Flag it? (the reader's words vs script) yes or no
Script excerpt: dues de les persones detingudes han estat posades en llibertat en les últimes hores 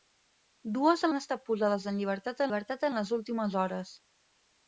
yes